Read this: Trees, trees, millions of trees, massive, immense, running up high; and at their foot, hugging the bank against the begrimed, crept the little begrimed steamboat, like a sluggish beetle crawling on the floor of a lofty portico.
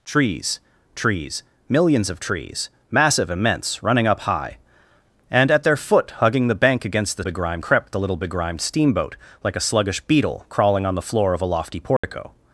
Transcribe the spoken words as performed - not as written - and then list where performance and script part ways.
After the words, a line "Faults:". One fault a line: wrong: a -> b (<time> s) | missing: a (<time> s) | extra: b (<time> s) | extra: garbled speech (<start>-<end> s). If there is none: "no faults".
Trees, trees, millions of trees, massive, immense, running up high; and at their foot, hugging the bank against the begrimed, crept the little begrimed steamboat, like a sluggish beetle crawling on the floor of a lofty portico.
Faults:
no faults